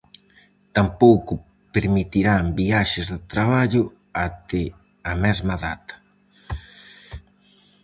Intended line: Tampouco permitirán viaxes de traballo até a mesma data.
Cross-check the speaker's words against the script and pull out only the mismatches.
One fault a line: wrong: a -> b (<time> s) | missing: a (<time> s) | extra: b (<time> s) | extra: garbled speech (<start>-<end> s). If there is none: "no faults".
no faults